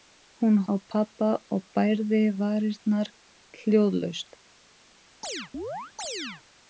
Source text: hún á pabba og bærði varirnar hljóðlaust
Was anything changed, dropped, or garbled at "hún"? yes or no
no